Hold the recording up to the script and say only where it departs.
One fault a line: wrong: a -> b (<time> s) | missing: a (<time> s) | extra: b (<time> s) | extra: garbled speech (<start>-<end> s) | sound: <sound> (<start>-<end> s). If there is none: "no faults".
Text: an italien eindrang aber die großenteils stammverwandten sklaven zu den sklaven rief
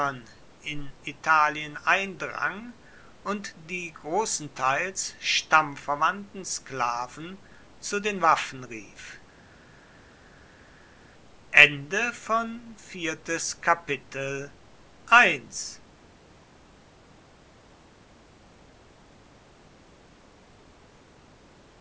wrong: an -> in (0.6 s)
wrong: aber -> und (3.2 s)
wrong: sklaven -> waffen (8.2 s)